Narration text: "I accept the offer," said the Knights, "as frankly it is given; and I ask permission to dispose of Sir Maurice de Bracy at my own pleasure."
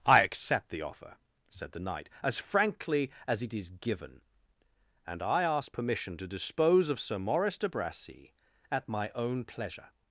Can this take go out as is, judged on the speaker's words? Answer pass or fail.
fail